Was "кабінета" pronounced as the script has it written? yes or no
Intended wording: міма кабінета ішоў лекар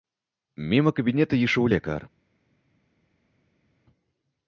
yes